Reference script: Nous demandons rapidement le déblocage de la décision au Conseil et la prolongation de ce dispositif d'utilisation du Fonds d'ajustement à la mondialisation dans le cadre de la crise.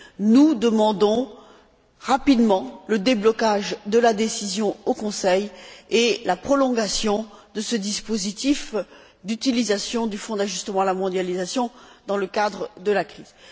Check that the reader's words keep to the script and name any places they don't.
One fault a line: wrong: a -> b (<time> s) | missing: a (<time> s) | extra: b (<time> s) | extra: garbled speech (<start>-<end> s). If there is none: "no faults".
no faults